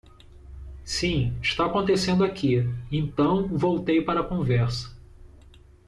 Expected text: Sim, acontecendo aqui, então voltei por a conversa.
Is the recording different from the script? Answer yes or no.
yes